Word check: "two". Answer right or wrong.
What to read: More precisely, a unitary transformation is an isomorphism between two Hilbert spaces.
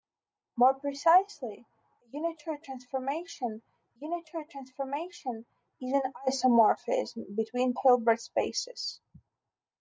wrong